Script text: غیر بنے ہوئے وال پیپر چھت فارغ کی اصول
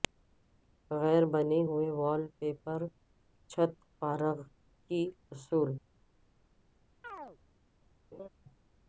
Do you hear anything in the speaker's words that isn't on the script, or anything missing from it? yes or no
no